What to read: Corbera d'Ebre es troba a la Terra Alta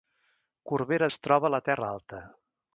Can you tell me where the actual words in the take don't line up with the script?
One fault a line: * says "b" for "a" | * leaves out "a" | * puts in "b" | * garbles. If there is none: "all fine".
* leaves out "d'Ebre"